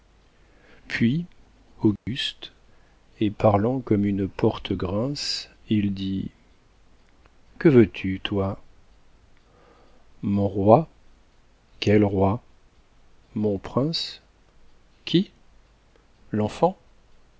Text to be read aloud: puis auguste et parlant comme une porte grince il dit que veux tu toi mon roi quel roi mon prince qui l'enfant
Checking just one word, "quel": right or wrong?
right